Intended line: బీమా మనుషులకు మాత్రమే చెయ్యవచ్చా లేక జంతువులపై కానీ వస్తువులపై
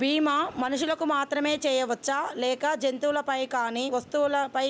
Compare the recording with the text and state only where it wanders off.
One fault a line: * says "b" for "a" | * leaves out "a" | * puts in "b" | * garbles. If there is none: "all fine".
all fine